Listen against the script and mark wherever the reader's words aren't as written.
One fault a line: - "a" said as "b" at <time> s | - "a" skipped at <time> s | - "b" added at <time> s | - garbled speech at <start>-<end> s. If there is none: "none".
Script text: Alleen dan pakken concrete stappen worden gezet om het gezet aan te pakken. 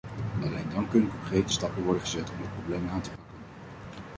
- "pakken" said as "kunnen" at 0.9 s
- "gezet" said as "probleem" at 2.5 s